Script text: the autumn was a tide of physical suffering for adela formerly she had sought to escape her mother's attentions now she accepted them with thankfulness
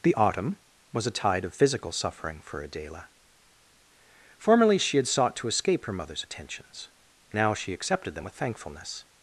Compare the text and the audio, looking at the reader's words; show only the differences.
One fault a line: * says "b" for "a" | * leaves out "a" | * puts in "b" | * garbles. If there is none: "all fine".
all fine